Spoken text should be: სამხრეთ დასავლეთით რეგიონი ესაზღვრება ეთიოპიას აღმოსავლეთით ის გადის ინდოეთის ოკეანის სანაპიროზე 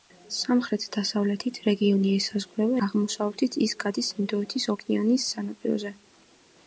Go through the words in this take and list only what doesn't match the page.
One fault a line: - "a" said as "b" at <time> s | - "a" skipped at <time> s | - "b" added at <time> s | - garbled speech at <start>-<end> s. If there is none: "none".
- "ეთიოპიას" skipped at 2.8 s